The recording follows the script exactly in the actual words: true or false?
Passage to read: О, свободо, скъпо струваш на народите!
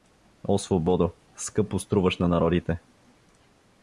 true